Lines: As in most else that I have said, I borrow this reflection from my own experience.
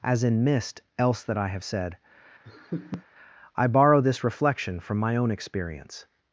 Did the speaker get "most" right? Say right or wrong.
wrong